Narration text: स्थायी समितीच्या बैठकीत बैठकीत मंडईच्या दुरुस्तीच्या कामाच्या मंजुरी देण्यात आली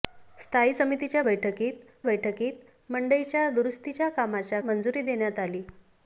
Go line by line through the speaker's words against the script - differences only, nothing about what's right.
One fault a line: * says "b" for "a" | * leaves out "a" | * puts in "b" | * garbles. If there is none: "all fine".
all fine